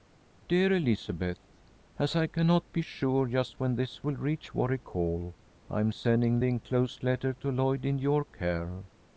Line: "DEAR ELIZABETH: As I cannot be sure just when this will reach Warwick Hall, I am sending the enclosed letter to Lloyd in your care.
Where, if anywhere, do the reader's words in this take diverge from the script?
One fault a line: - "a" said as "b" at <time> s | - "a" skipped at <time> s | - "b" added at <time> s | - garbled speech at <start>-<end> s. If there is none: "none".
none